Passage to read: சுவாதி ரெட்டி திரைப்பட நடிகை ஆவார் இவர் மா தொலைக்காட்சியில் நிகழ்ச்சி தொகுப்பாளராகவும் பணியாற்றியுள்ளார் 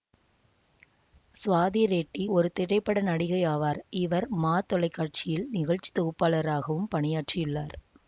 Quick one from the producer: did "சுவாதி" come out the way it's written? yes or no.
yes